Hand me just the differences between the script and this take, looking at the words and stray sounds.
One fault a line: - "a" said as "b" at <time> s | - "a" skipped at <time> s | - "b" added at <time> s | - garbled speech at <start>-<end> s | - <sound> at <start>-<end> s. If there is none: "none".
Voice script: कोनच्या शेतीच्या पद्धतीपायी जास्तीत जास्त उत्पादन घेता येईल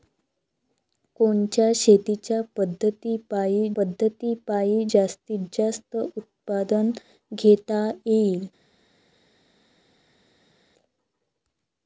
- "पद्धतीपायी" added at 3.8 s